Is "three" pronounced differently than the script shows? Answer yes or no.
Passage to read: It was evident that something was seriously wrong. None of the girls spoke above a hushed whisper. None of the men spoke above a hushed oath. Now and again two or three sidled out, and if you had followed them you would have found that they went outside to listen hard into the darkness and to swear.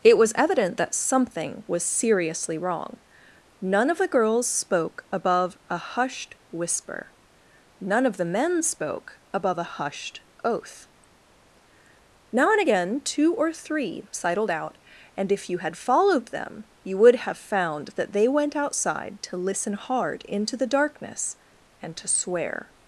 no